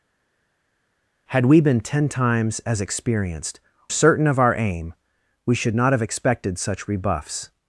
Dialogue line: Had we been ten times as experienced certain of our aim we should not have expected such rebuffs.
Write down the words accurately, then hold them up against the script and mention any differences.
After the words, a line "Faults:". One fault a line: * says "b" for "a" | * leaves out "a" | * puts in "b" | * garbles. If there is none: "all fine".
Had we been ten times as experienced certain of our aim we should not have expected such rebuffs.
Faults:
all fine